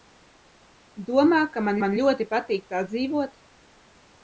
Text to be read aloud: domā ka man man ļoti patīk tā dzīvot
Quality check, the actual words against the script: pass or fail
pass